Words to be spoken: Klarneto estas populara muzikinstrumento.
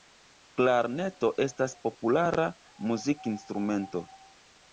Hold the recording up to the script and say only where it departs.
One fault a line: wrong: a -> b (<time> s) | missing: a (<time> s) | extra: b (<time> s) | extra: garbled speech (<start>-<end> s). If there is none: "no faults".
no faults